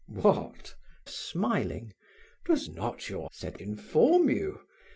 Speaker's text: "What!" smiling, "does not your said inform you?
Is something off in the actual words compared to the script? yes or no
no